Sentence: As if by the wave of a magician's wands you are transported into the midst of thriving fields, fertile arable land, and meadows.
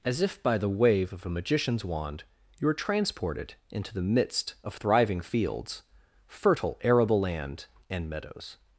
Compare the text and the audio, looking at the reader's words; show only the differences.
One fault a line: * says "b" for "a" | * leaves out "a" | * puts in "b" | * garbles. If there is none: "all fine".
* says "wand" for "wands"